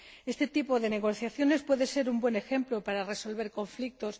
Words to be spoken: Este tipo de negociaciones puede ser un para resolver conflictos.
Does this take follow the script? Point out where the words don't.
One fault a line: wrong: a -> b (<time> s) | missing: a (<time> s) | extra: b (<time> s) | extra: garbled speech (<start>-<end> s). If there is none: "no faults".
extra: buen ejemplo (2.2 s)